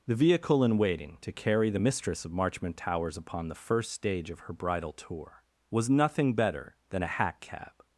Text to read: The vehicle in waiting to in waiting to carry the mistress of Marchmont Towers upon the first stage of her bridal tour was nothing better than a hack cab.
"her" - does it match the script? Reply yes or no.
yes